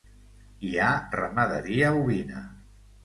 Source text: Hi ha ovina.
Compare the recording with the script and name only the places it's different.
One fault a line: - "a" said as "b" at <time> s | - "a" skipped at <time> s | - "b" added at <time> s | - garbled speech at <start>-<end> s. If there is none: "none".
- "ramaderia" added at 1.2 s